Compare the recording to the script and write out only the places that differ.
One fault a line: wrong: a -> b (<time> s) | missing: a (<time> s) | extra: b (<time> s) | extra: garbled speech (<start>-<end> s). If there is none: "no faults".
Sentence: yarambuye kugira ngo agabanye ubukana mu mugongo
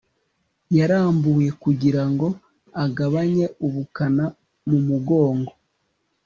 no faults